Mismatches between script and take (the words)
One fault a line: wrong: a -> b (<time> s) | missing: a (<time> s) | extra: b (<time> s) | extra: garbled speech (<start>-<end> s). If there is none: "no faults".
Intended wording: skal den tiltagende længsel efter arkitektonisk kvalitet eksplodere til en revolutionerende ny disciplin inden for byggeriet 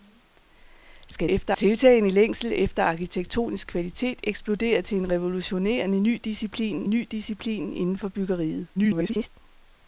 wrong: den -> efter (1.3 s)
extra: ny disciplin (6.9 s)
extra: garbled speech (8.8-9.3 s)